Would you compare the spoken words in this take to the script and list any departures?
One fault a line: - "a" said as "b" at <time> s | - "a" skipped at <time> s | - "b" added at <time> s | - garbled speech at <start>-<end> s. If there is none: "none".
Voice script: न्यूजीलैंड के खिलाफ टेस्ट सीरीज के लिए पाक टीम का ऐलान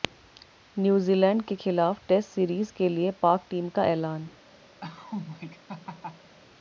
none